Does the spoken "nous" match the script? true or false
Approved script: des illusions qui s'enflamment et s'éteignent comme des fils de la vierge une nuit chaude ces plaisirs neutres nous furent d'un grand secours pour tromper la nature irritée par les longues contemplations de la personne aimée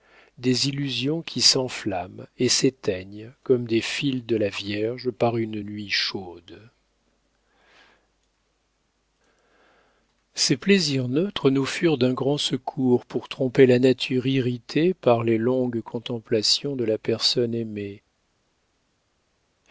true